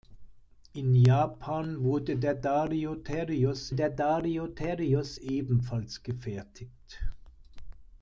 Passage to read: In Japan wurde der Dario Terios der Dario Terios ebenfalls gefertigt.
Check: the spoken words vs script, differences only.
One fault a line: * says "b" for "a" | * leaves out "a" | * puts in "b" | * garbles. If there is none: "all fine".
all fine